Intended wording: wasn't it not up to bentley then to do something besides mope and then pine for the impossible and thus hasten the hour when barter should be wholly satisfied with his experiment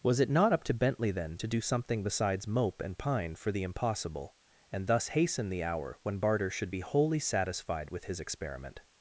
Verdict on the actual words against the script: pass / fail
fail